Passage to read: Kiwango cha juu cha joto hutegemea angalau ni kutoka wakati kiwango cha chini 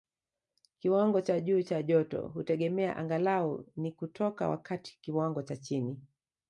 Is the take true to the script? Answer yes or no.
yes